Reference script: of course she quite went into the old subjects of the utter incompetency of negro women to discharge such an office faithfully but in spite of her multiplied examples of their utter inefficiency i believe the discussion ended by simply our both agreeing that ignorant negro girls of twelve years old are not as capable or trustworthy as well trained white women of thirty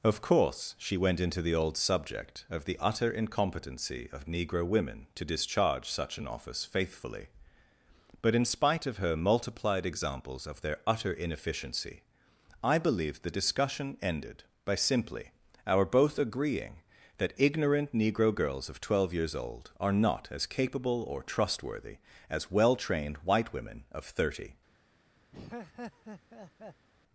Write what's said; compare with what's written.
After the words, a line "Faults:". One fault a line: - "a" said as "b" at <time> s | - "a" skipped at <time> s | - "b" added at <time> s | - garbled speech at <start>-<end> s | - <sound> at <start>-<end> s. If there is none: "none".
of course she went into the old subject of the utter incompetency of negro women to discharge such an office faithfully but in spite of her multiplied examples of their utter inefficiency i believe the discussion ended by simply our both agreeing that ignorant negro girls of twelve years old are not as capable or trustworthy as well trained white women of thirty
Faults:
- "quite" skipped at 1.0 s
- "subjects" said as "subject" at 1.8 s
- laugh at 25.3-26.9 s